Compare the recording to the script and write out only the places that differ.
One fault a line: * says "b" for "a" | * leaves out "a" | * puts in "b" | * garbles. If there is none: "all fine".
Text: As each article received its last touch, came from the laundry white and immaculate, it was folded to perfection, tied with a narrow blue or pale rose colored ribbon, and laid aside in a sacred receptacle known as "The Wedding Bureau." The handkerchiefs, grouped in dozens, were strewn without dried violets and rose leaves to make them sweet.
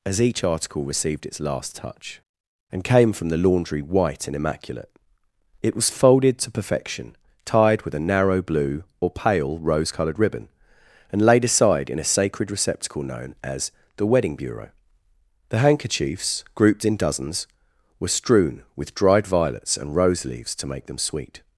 * puts in "and"
* says "with" for "without"